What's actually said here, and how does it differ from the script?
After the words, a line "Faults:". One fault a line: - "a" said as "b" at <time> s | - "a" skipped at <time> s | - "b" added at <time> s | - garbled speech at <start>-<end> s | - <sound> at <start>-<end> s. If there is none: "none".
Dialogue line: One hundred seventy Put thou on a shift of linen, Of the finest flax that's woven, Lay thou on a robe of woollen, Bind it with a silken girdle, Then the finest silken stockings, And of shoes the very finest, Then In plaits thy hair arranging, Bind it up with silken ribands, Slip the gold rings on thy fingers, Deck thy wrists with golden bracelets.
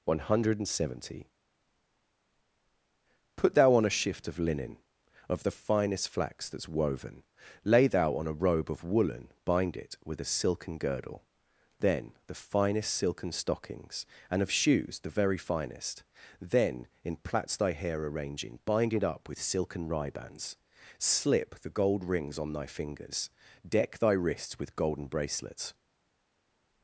One hundred seventy Put thou on a shift of linen, Of the finest flax that's woven, Lay thou on a robe of woollen, Bind it with a silken girdle, Then the finest silken stockings, And of shoes the very finest, Then In plaits thy hair arranging, Bind it up with silken ribands, Slip the gold rings on thy fingers, Deck thy wrists with golden bracelets.
Faults:
none